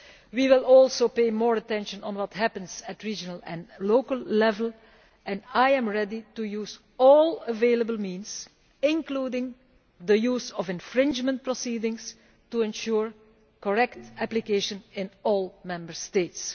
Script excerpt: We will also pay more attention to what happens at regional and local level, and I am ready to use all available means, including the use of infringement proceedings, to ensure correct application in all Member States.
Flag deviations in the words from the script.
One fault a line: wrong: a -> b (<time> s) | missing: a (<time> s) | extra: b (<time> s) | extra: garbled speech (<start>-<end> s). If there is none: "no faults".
no faults